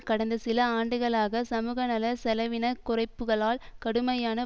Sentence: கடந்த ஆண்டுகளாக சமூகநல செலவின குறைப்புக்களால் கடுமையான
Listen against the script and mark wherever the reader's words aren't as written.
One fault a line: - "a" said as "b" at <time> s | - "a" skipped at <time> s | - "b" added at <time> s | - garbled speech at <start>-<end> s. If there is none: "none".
- "சில" added at 0.4 s